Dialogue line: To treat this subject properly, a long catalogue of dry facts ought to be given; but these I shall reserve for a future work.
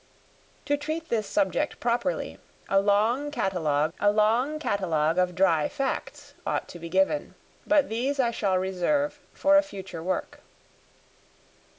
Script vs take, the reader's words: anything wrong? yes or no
yes